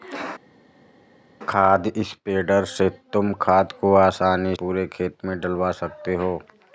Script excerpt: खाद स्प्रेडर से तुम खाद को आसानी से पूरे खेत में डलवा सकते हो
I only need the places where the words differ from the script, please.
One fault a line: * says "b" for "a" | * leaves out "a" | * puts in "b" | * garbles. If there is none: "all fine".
* leaves out "से"